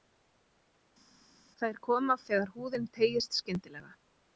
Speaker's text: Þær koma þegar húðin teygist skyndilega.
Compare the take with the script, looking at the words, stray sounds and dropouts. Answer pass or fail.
pass